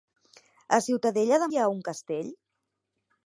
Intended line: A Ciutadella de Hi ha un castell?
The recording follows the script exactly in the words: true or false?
true